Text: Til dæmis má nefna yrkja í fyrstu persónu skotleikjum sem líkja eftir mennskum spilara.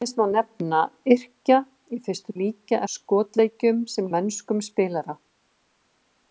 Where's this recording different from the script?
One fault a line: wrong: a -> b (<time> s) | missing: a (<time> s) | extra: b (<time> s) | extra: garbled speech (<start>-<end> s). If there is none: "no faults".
wrong: persónu -> líkja (2.4 s)
missing: líkja eftir (4.1 s)